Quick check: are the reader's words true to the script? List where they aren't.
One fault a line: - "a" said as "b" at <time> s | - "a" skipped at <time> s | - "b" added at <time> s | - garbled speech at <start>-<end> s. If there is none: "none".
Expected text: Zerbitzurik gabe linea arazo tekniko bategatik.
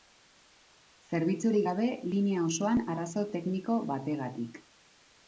- "osoan" added at 2.5 s